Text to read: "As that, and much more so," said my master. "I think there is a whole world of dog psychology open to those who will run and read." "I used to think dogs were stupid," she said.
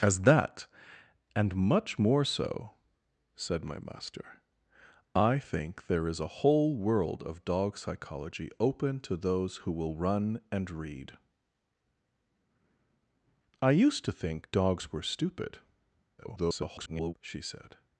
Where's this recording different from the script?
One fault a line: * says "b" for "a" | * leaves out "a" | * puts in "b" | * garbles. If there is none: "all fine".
* garbles